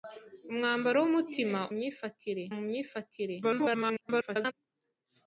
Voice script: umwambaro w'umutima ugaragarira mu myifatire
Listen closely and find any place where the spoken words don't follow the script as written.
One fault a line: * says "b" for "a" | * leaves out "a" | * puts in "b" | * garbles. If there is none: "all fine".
* says "myifatire" for "ugaragarira"
* garbles